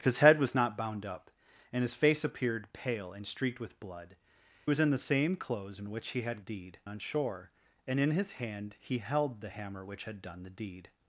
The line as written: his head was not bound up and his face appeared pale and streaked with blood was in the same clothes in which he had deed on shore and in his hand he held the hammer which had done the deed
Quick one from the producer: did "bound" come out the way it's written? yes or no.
yes